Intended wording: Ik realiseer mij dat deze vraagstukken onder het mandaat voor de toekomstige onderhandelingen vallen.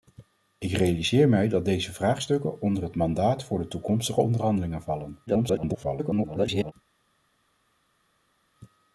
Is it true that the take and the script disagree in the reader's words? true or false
true